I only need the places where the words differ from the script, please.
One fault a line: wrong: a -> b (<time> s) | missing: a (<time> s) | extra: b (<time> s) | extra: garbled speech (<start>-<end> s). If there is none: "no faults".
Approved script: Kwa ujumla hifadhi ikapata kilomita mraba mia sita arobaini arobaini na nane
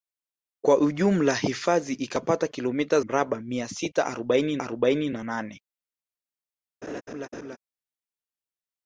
no faults